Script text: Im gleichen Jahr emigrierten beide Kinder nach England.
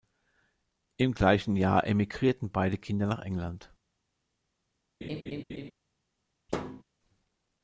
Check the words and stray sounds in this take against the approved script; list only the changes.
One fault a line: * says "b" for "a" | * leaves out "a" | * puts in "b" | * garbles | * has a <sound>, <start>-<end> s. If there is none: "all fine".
* has a laugh, 5.0-5.7 s
* has a thud, 6.5-6.8 s